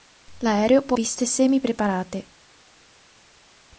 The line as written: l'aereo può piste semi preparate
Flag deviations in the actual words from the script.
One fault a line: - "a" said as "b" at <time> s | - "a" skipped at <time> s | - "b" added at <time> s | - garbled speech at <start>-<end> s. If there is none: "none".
none